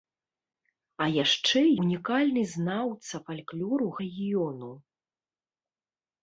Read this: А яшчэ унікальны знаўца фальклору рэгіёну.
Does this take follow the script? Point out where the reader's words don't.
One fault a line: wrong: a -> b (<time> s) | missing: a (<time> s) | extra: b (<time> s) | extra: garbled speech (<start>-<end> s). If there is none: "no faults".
no faults